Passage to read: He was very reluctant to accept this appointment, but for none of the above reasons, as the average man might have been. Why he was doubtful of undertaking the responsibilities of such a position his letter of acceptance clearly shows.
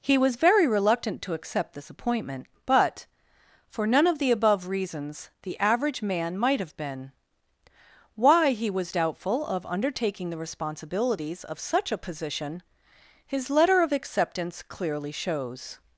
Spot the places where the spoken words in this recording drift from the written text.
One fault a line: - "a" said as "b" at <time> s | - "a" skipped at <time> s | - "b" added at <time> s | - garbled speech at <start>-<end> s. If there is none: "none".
- "as" skipped at 5.3 s